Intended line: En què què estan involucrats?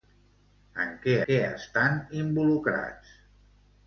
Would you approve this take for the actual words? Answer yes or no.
yes